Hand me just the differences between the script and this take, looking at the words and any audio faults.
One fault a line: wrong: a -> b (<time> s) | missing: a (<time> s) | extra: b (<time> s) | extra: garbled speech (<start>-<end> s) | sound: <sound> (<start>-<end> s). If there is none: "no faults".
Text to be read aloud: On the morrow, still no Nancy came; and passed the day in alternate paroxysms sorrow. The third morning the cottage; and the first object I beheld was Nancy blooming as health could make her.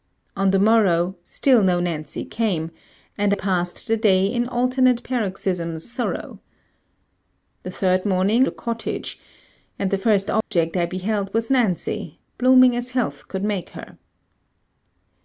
sound: dropout (10.4-10.5 s)